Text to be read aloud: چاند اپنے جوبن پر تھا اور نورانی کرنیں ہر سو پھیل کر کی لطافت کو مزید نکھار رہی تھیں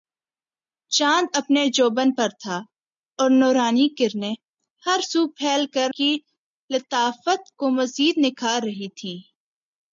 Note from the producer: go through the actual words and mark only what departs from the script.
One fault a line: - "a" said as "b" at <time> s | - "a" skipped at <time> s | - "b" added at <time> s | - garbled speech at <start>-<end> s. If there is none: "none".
none